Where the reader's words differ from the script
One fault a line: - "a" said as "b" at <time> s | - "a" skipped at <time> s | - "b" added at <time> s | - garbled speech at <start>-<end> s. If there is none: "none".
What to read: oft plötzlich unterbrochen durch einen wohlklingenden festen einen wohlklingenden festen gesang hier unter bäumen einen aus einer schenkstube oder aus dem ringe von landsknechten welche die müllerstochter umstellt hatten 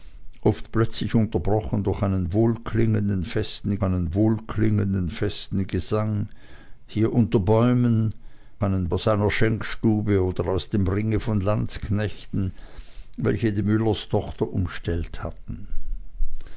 none